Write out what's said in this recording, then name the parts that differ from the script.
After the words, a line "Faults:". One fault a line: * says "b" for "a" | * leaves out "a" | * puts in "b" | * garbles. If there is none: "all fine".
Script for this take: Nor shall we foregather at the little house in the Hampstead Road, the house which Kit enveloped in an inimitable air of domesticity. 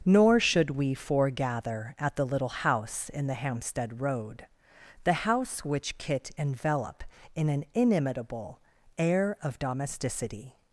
Nor should we foregather at the little house in the Hampstead Road, the house which Kit envelop in an inimitable air of domesticity.
Faults:
* says "should" for "shall"
* says "envelop" for "enveloped"